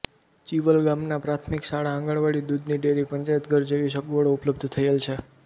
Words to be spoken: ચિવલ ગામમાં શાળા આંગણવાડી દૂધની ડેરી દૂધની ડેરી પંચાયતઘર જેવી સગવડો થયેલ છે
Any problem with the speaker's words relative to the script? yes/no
yes